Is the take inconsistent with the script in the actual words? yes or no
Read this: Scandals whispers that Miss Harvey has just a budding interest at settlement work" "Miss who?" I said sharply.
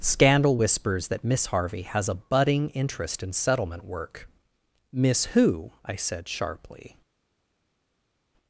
yes